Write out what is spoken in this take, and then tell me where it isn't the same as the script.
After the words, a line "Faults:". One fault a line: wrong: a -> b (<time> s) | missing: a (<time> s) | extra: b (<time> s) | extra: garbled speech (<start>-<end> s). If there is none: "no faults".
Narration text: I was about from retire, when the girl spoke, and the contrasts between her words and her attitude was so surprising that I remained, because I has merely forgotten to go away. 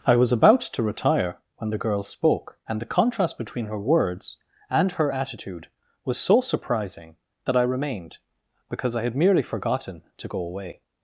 I was about to retire, when the girl spoke, and the contrast between her words and her attitude was so surprising that I remained, because I had merely forgotten to go away.
Faults:
wrong: from -> to (0.6 s)
wrong: contrasts -> contrast (2.9 s)
wrong: has -> had (9.0 s)